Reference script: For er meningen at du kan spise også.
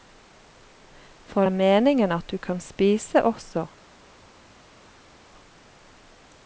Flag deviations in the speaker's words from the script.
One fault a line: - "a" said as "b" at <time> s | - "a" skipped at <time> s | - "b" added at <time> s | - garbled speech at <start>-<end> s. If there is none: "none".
none